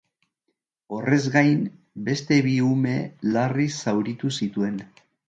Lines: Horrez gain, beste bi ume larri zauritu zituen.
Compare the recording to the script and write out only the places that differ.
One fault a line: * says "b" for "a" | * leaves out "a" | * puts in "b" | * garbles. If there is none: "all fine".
all fine